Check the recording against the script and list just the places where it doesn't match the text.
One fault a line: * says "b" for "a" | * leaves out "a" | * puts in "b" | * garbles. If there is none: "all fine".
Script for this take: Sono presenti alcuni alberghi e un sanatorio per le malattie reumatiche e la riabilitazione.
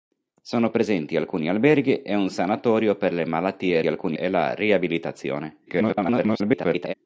* says "alcuni" for "reumatiche"
* garbles